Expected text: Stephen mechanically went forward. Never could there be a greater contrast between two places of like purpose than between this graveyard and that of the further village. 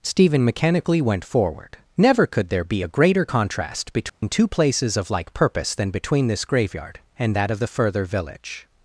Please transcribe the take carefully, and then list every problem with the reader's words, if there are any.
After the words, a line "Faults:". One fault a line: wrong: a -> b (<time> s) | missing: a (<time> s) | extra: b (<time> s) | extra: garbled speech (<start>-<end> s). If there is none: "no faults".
Stephen mechanically went forward. Never could there be a greater contrast between two places of like purpose than between this graveyard and that of the further village.
Faults:
no faults